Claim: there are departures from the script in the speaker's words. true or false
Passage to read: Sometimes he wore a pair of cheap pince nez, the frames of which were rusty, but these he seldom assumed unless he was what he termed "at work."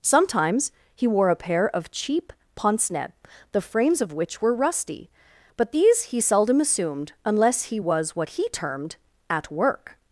false